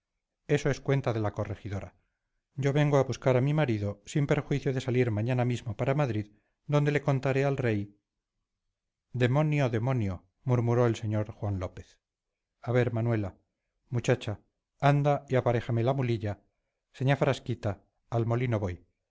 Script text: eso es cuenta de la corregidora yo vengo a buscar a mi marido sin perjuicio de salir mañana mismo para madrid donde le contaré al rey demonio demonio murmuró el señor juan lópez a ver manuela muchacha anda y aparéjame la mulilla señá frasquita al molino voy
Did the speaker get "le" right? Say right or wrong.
right